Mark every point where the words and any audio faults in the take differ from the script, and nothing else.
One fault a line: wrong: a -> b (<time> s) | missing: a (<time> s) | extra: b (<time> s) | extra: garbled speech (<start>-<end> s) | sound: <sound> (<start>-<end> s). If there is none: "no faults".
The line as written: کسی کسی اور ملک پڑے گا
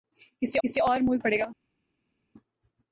no faults